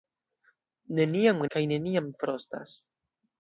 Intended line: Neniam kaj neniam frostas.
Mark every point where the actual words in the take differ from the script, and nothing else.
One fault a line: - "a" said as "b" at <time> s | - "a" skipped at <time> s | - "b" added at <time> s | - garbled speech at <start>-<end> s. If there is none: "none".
none